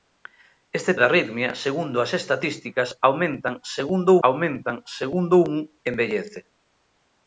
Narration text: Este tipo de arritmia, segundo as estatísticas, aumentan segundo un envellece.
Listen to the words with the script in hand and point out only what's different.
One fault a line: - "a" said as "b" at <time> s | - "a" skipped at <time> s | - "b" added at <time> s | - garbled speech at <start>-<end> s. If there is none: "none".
- "tipo" skipped at 0.9 s
- "aumentan segundo" added at 4.3 s